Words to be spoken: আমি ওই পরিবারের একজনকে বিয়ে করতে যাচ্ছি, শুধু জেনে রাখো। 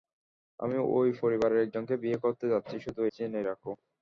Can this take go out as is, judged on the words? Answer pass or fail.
pass